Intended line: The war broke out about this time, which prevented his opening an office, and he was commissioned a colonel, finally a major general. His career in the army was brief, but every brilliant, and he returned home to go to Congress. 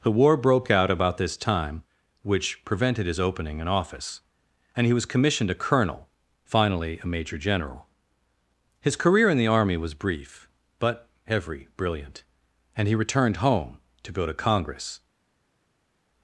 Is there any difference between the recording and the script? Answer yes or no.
no